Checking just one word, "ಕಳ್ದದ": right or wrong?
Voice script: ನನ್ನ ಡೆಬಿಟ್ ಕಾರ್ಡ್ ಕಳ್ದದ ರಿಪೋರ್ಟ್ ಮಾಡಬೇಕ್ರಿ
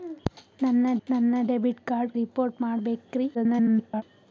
wrong